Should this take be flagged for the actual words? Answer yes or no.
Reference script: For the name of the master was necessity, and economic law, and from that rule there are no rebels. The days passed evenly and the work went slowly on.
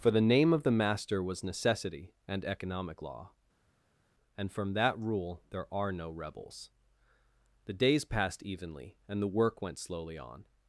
no